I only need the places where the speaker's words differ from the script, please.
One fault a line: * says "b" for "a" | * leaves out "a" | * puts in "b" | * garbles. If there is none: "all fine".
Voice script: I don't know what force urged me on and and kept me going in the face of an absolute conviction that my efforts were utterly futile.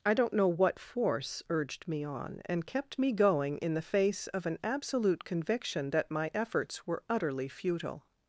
* leaves out "and"